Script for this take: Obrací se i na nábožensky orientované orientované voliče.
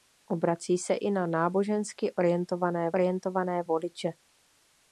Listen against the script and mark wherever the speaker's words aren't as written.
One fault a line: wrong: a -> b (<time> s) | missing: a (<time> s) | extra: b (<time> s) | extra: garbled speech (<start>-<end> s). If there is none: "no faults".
no faults